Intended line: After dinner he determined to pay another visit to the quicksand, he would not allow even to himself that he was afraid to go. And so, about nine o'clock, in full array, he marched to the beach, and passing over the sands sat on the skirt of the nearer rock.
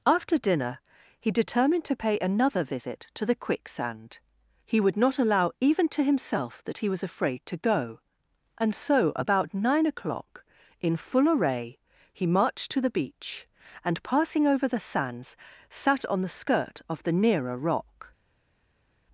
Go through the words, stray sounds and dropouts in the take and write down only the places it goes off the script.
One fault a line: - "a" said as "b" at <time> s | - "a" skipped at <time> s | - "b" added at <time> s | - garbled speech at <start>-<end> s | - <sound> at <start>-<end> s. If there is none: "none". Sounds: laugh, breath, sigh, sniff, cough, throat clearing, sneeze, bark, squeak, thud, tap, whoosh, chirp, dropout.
none